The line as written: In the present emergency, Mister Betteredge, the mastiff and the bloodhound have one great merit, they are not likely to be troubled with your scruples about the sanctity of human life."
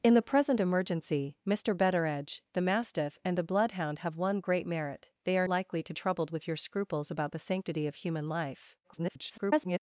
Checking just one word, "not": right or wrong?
wrong